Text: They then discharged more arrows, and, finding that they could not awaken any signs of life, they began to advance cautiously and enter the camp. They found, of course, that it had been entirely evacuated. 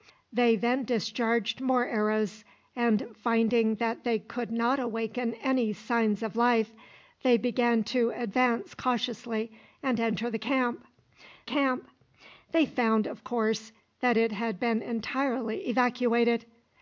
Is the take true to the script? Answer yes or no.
no